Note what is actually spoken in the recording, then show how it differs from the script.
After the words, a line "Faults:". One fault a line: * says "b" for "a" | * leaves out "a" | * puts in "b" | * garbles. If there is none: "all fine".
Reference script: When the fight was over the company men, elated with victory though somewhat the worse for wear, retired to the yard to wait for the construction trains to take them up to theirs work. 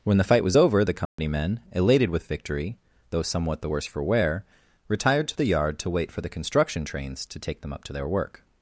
When the fight was over the company men, elated with victory though somewhat the worse for wear, retired to the yard to wait for the construction trains to take them up to their work.
Faults:
* says "their" for "theirs"